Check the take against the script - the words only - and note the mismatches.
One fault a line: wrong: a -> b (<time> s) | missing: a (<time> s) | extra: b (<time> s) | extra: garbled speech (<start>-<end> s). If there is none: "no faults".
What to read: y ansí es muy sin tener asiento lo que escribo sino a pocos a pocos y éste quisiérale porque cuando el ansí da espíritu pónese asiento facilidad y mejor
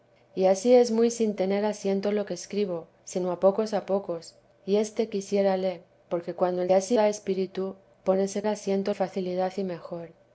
no faults